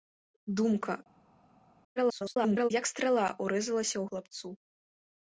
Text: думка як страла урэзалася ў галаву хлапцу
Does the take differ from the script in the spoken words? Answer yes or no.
yes